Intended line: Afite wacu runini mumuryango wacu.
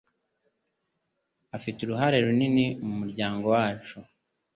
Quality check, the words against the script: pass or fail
fail